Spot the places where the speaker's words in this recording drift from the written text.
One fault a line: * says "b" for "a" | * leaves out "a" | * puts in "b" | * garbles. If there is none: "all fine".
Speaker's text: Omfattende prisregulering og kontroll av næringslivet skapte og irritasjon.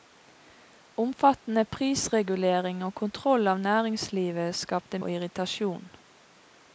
all fine